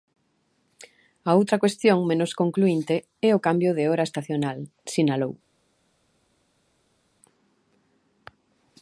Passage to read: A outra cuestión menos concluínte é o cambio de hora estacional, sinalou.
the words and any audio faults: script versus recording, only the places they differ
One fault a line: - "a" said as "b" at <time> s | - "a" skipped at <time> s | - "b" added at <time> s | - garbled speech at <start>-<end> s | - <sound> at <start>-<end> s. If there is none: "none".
none